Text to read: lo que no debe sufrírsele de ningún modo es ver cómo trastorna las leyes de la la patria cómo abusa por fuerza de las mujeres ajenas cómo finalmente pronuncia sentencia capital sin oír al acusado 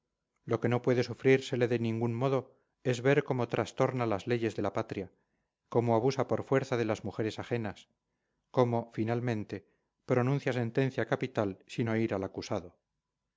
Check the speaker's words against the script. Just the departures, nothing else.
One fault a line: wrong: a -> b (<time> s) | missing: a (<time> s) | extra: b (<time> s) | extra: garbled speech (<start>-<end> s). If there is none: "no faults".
wrong: debe -> puede (0.8 s)
missing: la (4.7 s)